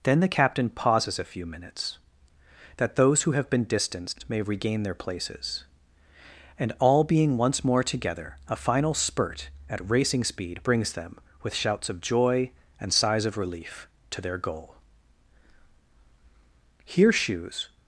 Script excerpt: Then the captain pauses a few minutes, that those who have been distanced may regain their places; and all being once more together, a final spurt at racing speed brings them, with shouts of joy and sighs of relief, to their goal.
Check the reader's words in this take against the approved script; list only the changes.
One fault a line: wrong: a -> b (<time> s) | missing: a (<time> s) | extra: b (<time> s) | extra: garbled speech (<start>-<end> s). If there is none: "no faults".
extra: Here shoes (16.8 s)